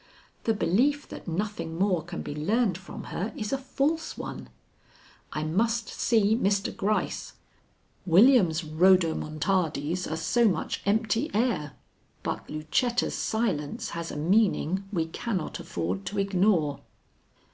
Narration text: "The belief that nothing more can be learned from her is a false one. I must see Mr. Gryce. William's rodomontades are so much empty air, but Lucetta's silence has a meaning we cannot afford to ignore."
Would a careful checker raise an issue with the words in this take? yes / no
no